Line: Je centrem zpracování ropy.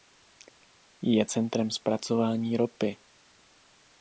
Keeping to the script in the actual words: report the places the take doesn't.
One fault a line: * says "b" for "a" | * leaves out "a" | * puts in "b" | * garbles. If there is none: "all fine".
all fine